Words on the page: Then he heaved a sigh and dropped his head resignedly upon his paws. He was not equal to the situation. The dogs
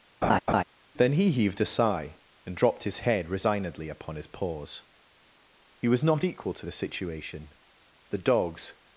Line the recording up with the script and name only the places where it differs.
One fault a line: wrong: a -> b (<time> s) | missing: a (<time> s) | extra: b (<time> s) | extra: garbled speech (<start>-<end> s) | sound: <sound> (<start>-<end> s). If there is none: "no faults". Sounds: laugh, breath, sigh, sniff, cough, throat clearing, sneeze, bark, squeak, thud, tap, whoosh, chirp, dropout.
sound: laugh (0.2-0.6 s)